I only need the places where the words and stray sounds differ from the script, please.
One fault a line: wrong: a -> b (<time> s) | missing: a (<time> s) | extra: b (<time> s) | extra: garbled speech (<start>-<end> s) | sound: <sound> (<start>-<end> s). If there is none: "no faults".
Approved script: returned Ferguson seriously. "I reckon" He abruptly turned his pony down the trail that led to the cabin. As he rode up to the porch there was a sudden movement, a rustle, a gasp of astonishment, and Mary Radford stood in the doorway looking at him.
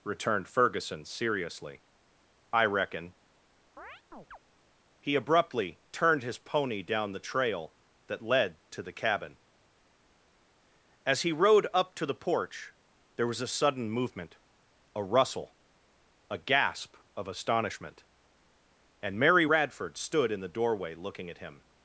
sound: chirp (3.8-4.4 s)